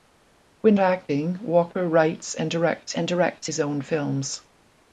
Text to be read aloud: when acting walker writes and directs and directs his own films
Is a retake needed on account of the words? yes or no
no